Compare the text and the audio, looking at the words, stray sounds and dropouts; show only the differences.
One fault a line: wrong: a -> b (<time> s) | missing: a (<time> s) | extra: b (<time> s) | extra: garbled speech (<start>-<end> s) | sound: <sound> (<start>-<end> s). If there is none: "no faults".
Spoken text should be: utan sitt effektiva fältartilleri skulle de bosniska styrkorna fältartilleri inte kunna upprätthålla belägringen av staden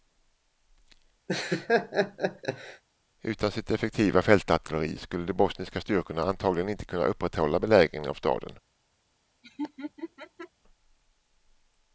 sound: laugh (1.3-2.8 s)
wrong: fältartilleri -> antagligen (6.2 s)
sound: laugh (9.4-10.5 s)